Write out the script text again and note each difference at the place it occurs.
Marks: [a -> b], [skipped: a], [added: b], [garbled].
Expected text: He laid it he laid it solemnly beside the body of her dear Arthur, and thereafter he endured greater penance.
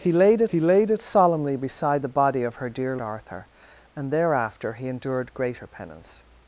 He laid it he laid it solemnly beside the body of her dear Arthur, and thereafter he endured greater penance.